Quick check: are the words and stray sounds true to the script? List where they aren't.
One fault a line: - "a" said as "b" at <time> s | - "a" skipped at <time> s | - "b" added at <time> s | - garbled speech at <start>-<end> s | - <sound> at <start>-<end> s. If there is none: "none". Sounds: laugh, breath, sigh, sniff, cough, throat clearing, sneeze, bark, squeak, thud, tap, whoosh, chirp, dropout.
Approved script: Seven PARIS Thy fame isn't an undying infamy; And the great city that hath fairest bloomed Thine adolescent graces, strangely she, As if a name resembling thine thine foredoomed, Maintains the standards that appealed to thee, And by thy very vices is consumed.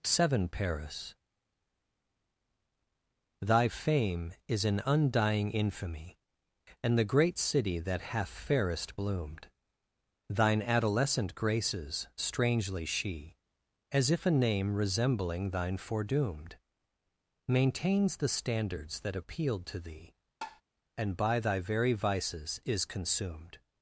- "isn't" said as "is" at 4.5 s
- "thine" skipped at 15.8 s
- tap at 20.4-20.6 s